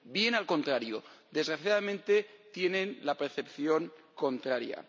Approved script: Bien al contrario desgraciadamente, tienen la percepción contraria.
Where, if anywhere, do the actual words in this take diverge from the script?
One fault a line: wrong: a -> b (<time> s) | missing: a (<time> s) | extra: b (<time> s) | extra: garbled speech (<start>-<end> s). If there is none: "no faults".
no faults